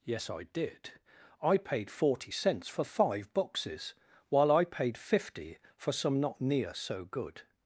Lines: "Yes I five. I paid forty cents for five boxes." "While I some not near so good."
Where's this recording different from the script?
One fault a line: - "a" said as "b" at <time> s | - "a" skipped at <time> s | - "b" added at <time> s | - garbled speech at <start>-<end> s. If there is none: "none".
- "five" said as "did" at 0.5 s
- "paid fifty for" added at 4.6 s